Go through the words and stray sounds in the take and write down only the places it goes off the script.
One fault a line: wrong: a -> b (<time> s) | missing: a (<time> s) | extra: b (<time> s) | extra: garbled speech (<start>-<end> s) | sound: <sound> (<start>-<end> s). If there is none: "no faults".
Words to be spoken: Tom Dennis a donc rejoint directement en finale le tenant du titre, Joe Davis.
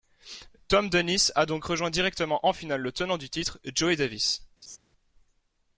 sound: laugh (4.6-4.8 s)